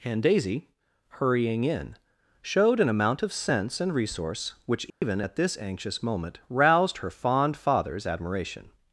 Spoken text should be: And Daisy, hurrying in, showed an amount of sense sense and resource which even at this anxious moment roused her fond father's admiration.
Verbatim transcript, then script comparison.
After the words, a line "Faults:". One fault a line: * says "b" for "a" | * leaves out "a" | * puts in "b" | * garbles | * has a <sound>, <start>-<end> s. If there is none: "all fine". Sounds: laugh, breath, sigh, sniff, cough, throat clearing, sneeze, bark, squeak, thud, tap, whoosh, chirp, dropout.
And Daisy, hurrying in, showed an amount of sense and resource which even at this anxious moment roused her fond father's admiration.
Faults:
* leaves out "sense"
* has a dropout, 4.9-5.0 s